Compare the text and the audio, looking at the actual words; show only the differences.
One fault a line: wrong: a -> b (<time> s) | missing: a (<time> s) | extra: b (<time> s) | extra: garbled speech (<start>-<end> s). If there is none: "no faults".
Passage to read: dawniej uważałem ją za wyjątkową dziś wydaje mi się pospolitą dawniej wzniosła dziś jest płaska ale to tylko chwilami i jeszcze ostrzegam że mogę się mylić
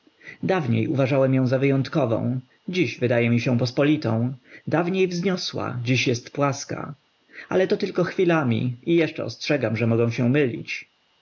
no faults